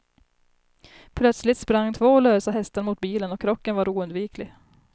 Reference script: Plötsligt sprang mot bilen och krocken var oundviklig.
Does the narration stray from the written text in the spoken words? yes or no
yes